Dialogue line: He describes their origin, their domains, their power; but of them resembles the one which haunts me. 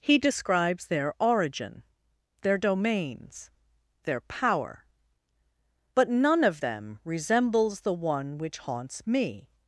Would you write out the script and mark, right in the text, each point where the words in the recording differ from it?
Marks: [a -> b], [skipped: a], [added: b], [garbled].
He describes their origin, their domains, their power; but [added: none] of them resembles the one which haunts me.